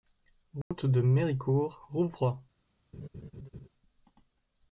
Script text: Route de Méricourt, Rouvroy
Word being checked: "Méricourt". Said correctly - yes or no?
yes